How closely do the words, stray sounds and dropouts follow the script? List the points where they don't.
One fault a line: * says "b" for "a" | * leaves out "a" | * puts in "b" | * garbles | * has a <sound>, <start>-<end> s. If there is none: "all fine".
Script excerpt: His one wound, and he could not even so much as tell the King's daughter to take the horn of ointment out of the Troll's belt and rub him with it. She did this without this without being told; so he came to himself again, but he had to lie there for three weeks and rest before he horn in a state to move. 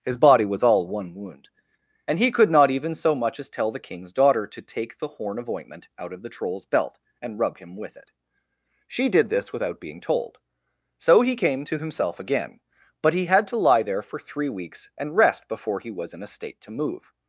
* puts in "body was all"
* leaves out "this without"
* says "was" for "horn"